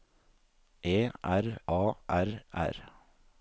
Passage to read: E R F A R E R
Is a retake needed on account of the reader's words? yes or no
yes